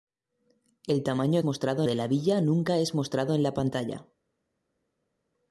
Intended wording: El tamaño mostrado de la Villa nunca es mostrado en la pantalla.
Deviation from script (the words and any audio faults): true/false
false